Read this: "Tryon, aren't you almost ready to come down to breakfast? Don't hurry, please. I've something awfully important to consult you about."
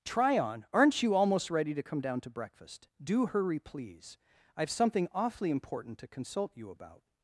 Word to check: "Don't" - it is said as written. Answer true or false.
false